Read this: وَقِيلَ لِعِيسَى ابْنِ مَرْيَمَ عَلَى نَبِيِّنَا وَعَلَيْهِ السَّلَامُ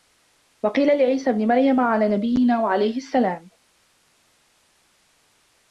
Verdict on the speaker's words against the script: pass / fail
pass